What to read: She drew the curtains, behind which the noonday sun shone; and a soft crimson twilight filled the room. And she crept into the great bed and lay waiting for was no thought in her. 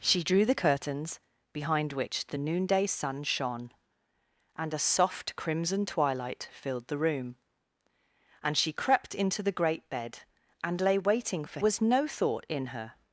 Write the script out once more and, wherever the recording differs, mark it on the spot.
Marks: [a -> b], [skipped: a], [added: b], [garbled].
She drew the curtains, behind which the noonday sun shone; and a soft crimson twilight filled the room. And she crept into the great bed and lay waiting for was no thought in her.